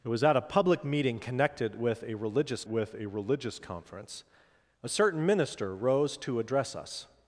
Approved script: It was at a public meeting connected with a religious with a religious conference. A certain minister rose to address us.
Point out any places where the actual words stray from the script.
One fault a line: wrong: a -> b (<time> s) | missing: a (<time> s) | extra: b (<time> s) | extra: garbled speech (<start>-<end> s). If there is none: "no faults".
no faults